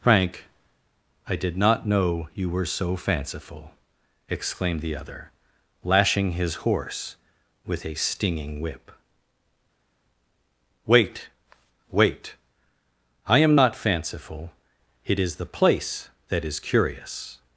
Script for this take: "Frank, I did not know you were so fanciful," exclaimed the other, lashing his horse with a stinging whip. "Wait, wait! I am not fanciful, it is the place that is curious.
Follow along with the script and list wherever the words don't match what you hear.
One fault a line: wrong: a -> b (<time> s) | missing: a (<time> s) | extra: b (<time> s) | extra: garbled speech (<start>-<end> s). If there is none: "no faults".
no faults